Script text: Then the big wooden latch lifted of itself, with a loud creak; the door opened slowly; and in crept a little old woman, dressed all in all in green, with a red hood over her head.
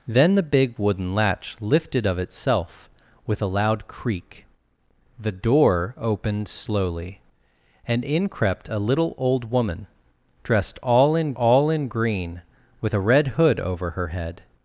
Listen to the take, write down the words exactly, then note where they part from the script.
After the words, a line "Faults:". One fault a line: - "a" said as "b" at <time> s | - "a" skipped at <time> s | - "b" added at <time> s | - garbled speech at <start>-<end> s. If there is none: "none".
Then the big wooden latch lifted of itself, with a loud creak; the door opened slowly; and in crept a little old woman, dressed all in all in green, with a red hood over her head.
Faults:
none